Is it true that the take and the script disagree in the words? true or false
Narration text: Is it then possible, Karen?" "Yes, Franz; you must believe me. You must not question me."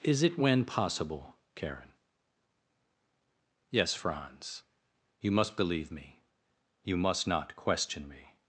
true